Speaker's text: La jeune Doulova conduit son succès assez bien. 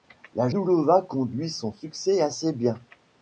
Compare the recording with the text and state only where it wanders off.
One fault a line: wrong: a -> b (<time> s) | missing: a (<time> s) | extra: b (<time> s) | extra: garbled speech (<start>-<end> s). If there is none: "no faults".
missing: jeune (0.5 s)